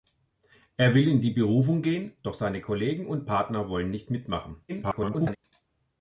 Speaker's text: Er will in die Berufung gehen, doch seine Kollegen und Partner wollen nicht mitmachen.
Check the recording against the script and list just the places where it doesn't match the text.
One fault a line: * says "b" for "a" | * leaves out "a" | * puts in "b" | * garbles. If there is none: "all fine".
* garbles